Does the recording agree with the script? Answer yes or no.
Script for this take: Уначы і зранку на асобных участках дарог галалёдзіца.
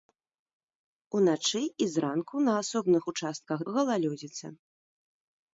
no